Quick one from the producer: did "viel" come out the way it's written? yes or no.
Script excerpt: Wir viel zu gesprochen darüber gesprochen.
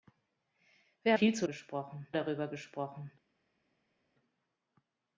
yes